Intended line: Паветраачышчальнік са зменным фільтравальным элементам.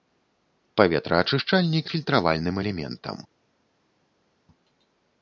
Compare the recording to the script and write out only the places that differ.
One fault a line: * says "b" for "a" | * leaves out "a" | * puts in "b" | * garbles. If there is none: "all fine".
* leaves out "са зменным"